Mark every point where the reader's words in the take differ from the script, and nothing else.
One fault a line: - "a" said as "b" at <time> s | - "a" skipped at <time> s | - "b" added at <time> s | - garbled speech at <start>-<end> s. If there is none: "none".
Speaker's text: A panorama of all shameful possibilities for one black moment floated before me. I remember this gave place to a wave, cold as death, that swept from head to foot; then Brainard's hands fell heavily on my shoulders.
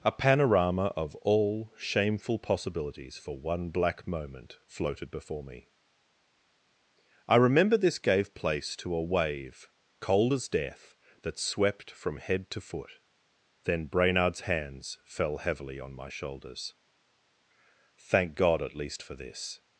- "Thank God at least for this" added at 18.0 s